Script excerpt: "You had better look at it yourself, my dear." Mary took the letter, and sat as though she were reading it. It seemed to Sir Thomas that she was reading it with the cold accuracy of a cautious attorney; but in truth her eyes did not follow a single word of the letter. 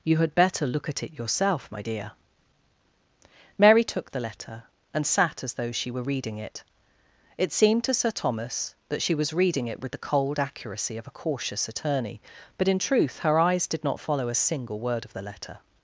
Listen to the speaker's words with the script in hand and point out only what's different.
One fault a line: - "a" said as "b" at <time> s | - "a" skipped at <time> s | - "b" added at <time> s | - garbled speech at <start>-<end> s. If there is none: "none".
none